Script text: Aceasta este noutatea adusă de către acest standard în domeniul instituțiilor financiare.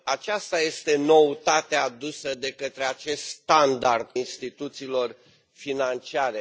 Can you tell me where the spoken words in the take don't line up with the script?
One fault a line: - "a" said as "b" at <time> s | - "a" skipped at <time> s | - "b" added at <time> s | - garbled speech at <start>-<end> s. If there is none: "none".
- "în domeniul" skipped at 4.1 s